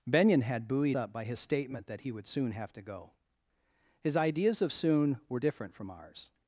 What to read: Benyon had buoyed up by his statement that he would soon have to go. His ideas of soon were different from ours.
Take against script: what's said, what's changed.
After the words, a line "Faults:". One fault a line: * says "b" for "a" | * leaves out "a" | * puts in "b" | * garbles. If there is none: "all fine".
Benyon had buoyed up by his statement that he would soon have to go. His ideas of soon were different from ours.
Faults:
all fine